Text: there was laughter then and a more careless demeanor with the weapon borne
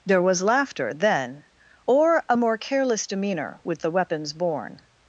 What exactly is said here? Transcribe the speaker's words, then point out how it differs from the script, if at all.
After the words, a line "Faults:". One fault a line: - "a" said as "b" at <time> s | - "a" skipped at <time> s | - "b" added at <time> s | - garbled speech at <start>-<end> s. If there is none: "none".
there was laughter then or a more careless demeanor with the weapons borne
Faults:
- "and" said as "or" at 1.9 s
- "weapon" said as "weapons" at 3.9 s